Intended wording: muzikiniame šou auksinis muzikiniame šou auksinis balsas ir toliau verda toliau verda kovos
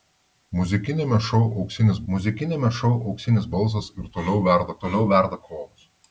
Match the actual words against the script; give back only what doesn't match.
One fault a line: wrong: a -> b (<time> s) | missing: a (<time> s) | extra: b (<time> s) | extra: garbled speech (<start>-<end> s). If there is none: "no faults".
no faults